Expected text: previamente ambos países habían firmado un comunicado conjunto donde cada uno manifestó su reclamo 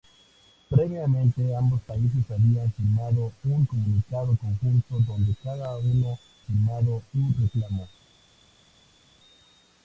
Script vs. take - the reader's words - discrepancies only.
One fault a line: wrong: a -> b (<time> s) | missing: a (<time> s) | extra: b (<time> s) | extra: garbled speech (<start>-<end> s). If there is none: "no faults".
wrong: manifestó -> firmado (6.4 s)